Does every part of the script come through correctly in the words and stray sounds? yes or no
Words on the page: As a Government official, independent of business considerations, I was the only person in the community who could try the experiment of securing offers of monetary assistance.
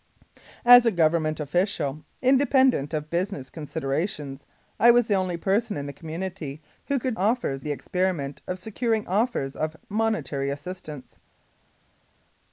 no